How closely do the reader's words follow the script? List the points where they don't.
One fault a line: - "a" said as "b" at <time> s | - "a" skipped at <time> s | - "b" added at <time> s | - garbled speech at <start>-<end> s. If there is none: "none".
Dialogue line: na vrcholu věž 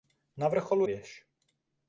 none